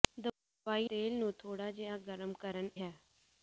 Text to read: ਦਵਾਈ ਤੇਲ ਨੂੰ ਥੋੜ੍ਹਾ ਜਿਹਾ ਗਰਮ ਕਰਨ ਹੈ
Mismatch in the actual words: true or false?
false